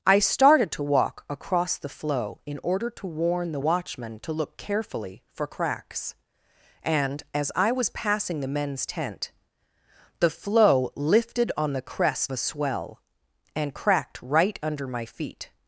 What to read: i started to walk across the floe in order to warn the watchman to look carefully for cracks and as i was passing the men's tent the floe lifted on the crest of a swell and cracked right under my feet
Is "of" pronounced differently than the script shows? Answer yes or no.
yes